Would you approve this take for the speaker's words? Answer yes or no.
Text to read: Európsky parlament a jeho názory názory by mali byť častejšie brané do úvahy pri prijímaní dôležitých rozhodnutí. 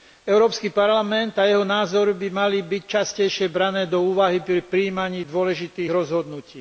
no